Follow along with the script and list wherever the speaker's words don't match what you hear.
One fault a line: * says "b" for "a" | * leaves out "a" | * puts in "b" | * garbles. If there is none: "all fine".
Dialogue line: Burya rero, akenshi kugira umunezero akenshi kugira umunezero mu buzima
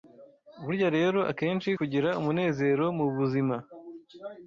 * leaves out "akenshi kugira umunezero"